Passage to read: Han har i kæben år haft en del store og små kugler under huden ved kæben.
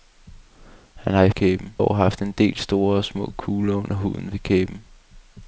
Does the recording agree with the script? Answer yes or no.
yes